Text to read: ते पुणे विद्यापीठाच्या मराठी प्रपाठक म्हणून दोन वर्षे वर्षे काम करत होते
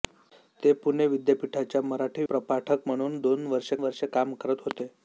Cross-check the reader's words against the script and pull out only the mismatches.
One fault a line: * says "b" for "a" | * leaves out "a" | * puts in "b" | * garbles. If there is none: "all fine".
all fine